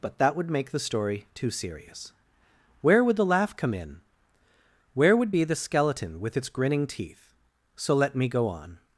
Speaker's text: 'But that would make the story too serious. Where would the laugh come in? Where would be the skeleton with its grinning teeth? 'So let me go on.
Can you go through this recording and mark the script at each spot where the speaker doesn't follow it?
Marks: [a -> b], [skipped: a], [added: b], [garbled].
'But that would make the story too serious. Where would the laugh come in? Where would be the skeleton with its grinning teeth? 'So let me go on.